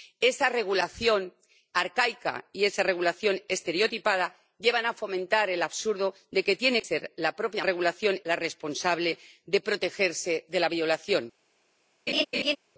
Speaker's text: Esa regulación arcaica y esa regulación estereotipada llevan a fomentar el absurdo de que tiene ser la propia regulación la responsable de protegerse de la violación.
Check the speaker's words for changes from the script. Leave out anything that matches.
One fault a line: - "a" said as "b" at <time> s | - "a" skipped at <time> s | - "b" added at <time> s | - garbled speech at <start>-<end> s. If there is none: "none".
none